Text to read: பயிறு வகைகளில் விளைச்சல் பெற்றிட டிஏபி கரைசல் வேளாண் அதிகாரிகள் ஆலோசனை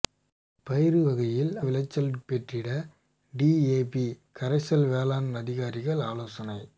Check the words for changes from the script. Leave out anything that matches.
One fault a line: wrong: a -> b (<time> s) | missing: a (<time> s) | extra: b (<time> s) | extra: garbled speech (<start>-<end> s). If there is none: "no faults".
no faults